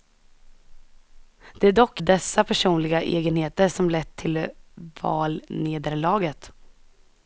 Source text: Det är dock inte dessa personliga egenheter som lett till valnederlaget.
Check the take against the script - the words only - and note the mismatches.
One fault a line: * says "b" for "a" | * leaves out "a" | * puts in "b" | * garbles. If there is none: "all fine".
* leaves out "inte"